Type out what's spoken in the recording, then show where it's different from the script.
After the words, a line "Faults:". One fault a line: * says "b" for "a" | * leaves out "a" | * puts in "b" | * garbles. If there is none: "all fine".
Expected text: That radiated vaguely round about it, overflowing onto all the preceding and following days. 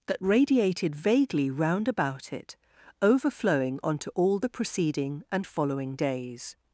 That radiated vaguely round about it, overflowing onto all the preceding and following days.
Faults:
all fine